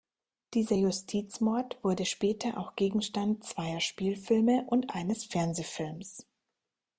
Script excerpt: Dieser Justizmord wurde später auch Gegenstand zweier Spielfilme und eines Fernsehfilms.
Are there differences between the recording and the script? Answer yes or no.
no